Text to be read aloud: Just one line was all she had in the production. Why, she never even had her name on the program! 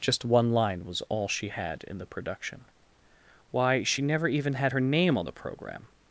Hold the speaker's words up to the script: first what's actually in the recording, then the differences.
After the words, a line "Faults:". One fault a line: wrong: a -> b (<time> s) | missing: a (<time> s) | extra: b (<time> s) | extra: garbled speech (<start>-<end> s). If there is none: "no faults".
Just one line was all she had in the production. Why, she never even had her name on the program!
Faults:
no faults